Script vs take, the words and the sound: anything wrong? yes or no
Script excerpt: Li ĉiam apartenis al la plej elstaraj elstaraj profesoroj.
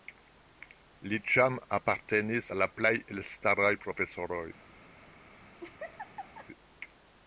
yes